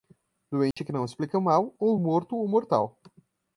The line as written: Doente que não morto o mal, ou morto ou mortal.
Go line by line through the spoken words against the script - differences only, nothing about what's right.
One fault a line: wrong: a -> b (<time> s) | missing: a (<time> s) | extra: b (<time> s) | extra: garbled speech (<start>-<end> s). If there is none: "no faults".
wrong: morto -> explica (1.1 s)